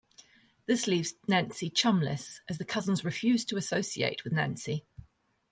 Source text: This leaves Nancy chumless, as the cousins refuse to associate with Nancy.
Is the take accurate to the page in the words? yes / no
yes